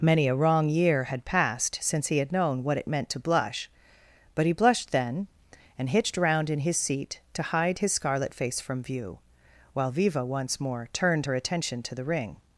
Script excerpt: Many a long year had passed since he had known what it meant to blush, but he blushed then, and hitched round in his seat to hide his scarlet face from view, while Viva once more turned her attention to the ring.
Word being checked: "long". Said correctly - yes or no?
no